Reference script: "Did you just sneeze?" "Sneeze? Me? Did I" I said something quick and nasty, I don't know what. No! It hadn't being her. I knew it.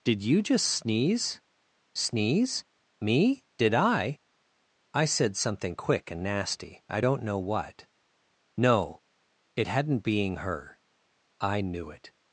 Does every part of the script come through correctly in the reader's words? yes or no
yes